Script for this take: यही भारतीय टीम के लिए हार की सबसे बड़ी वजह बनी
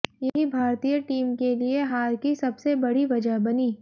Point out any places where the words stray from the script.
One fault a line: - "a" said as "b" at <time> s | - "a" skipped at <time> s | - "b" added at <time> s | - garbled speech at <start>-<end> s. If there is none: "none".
none